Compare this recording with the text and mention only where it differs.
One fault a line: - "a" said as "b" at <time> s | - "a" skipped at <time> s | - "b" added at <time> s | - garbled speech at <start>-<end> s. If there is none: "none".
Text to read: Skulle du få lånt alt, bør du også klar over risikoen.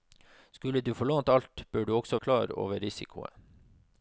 none